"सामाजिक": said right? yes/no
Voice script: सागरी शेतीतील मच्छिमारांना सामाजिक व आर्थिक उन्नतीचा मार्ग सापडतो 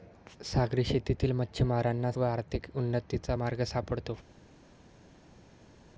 no